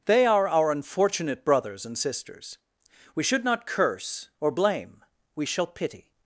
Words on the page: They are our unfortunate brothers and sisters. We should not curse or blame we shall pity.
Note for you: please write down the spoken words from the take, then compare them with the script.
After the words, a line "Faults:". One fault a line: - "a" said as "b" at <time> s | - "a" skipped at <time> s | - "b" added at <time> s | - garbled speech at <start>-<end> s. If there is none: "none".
They are our unfortunate brothers and sisters. We should not curse or blame we shall pity.
Faults:
none